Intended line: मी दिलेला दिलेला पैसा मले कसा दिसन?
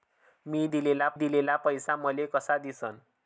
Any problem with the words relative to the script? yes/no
no